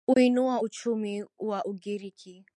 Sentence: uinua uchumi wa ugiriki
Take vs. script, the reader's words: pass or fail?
pass